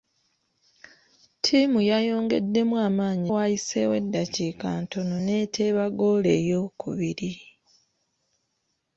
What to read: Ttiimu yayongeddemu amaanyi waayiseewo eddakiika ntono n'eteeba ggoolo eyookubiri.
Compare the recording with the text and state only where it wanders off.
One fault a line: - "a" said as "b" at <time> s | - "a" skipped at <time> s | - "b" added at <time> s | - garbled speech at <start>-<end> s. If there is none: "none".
none